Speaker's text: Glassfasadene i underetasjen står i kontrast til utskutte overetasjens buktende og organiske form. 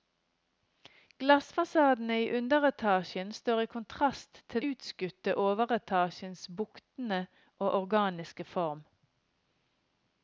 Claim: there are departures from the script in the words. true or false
false